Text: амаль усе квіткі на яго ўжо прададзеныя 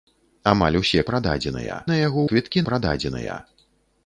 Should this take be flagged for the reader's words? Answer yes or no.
yes